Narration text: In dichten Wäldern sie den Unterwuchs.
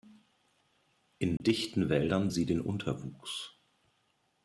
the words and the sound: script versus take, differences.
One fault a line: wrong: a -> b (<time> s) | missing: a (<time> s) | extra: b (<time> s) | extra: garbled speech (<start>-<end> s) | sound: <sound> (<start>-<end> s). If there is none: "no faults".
sound: dropout (1.4-1.4 s)